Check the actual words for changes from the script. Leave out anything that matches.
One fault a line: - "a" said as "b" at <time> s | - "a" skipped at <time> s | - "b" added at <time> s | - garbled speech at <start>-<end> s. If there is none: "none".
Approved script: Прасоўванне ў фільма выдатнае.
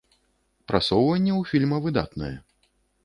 none